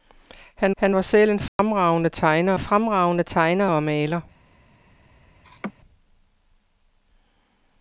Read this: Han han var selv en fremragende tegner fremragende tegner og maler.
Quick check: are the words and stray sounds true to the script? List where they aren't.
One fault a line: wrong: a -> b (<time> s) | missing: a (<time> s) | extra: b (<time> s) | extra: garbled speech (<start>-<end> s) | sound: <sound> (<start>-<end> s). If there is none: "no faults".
sound: dropout (1.5-1.6 s)
sound: laugh (5.4-5.7 s)